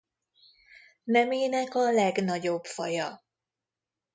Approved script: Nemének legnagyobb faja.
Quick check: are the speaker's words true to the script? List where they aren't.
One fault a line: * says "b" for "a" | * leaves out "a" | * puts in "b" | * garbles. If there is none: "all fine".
* puts in "a"